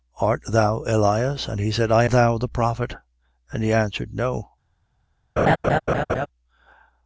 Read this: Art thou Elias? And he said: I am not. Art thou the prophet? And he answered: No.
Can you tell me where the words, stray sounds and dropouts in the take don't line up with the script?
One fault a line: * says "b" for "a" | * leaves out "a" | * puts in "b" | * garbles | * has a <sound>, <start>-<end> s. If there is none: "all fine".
* leaves out "am not Art"
* has a laugh, 5.4-6.3 s